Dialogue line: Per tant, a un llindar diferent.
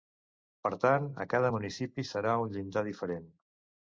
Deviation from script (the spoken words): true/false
true